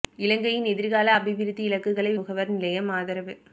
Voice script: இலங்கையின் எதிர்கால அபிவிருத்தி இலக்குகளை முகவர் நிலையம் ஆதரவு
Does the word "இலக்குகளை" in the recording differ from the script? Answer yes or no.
no